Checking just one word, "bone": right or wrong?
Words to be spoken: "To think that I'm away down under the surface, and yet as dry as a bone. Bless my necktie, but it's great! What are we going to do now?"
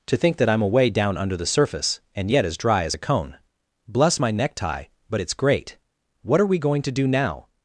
wrong